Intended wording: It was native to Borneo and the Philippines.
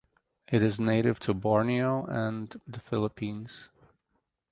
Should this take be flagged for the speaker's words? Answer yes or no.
yes